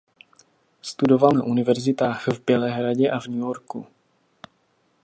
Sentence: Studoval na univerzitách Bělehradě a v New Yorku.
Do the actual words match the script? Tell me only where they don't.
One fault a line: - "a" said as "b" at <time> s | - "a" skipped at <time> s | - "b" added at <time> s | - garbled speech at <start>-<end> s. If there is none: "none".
- "v" added at 2.3 s